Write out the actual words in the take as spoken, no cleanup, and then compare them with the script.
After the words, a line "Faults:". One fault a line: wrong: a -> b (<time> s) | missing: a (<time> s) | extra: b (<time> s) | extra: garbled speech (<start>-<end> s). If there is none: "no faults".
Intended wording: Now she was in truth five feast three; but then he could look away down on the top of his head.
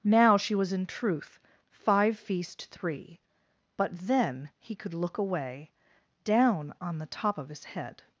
Now she was in truth five feast three; but then he could look away down on the top of his head.
Faults:
no faults